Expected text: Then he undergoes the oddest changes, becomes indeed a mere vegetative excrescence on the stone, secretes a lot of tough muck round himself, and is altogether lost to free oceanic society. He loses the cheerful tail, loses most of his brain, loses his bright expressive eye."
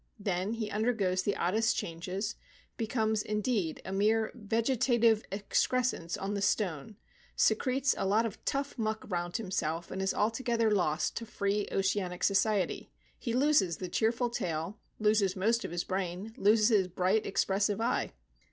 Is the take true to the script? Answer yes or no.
yes